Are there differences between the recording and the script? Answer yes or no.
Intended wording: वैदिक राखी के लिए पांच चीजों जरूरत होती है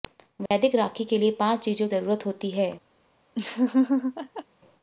no